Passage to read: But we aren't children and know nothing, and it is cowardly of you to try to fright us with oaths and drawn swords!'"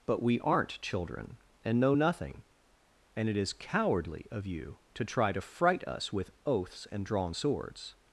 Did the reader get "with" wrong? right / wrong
right